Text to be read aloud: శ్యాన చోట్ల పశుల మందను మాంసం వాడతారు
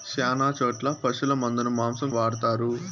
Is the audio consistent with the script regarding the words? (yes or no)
yes